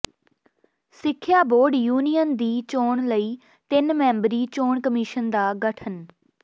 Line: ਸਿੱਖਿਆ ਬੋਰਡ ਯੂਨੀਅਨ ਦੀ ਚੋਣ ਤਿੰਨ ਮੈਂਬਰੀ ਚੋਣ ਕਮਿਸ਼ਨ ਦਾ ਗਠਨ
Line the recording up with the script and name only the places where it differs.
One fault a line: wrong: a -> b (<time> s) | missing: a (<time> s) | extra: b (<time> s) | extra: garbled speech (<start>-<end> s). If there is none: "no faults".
extra: ਲਈ (3.1 s)